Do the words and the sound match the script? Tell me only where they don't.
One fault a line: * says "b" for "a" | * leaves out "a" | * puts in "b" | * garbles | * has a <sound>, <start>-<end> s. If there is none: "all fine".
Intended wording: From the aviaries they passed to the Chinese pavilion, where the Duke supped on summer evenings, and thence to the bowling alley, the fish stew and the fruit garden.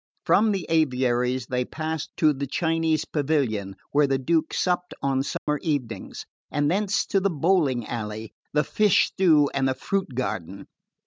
* has a dropout, 5.4-5.5 s